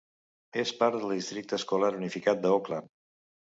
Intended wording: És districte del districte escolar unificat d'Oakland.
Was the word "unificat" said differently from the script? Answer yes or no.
no